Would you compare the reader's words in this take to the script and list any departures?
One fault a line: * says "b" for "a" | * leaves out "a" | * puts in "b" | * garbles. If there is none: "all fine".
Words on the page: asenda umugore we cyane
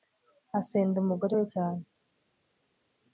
all fine